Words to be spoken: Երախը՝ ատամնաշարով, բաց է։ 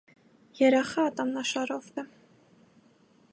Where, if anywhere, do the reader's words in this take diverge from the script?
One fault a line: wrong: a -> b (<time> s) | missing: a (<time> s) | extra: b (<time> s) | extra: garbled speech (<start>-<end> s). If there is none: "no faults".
missing: բաց (1.9 s)